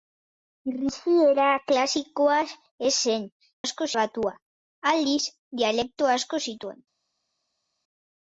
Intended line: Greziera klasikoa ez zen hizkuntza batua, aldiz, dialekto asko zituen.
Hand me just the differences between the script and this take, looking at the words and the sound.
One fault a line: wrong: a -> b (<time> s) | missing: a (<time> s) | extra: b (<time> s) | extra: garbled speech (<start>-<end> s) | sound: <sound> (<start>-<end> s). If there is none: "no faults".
wrong: hizkuntza -> asko (3.6 s)